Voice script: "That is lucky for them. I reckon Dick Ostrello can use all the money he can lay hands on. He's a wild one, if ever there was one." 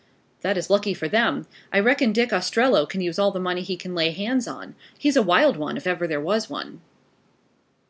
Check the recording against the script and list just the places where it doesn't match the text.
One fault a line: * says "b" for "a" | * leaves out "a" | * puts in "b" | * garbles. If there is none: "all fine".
all fine